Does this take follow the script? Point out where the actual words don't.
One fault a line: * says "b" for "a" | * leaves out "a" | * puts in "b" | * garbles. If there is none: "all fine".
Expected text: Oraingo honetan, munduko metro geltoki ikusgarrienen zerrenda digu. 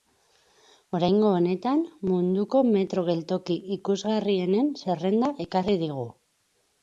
* puts in "ekarri"